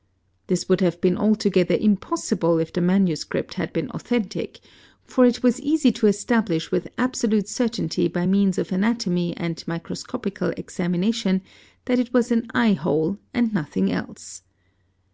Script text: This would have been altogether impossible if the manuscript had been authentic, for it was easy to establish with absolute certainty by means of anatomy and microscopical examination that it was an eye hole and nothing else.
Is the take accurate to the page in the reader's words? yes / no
yes